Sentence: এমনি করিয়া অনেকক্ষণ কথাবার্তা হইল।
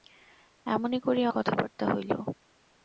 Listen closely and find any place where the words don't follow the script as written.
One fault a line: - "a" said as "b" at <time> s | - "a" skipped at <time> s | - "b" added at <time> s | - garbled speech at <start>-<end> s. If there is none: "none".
- "অনেকক্ষণ" skipped at 1.3 s